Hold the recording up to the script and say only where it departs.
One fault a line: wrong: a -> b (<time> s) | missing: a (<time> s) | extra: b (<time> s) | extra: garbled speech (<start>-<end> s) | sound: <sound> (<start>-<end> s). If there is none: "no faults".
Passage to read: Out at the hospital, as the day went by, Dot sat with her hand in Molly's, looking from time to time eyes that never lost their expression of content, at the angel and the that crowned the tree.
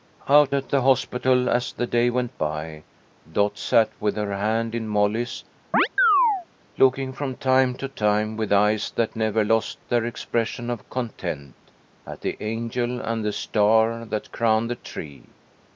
sound: chirp (5.7-6.5 s)
extra: with (8.4 s)
extra: star (13.3 s)